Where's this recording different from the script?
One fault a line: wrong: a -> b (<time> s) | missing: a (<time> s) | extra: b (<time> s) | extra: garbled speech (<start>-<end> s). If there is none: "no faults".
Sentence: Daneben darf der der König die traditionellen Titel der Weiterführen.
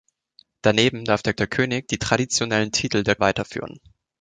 no faults